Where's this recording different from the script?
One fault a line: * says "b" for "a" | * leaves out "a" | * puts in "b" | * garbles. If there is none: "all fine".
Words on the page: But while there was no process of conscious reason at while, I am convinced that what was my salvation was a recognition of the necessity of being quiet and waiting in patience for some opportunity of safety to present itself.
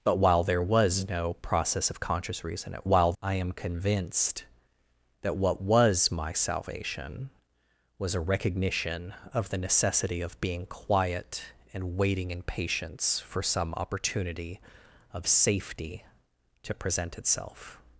all fine